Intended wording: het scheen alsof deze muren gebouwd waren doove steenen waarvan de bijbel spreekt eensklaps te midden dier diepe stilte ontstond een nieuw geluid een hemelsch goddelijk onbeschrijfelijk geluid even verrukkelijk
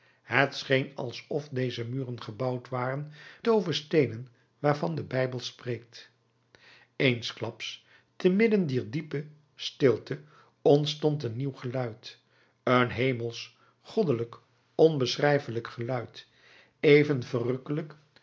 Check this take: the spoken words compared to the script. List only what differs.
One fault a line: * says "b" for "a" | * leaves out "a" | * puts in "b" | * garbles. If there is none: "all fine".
all fine